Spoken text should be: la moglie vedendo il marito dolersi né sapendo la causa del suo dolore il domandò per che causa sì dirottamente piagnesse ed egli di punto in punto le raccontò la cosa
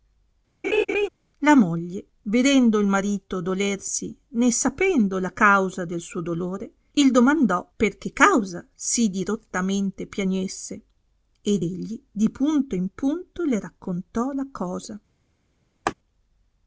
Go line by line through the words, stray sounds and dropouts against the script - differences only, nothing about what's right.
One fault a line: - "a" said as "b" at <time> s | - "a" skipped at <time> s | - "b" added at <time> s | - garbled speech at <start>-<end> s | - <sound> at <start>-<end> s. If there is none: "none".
- laugh at 0.6-1.1 s
- laugh at 15.9-15.9 s